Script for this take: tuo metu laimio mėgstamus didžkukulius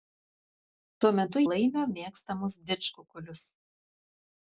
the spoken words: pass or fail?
pass